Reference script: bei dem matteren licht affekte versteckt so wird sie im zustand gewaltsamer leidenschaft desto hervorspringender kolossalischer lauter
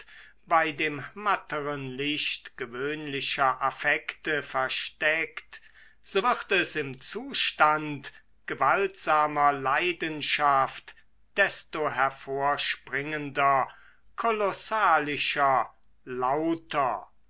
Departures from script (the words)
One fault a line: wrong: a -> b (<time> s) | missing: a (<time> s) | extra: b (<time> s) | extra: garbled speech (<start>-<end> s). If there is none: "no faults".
extra: gewöhnlicher (2.6 s)
wrong: sie -> es (6.5 s)